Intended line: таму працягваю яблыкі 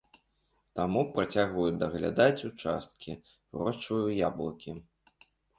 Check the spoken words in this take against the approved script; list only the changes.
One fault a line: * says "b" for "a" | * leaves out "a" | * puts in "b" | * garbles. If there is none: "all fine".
* puts in "даглядаць участкі вырошчваю"